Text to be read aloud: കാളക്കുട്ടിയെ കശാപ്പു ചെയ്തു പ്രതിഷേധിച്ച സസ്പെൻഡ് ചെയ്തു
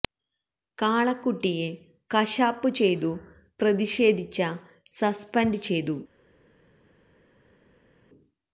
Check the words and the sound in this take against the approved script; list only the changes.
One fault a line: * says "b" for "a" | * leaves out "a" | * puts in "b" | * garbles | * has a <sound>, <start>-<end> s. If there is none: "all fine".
all fine